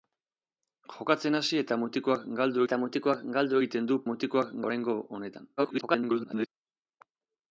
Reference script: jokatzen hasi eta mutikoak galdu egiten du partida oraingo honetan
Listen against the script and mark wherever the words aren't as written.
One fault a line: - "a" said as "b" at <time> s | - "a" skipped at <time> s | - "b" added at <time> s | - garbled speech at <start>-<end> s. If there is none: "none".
- "eta mutikoak galdu" added at 2.6 s
- "partida" said as "mutikoak" at 4.1 s
- garbled speech at 5.6-6.5 s